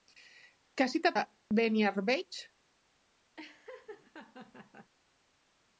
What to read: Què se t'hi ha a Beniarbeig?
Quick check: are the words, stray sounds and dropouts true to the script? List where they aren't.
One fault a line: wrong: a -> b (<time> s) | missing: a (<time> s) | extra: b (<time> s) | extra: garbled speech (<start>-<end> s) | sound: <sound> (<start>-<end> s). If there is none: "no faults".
sound: dropout (1.4-1.5 s)
sound: laugh (3.4-4.9 s)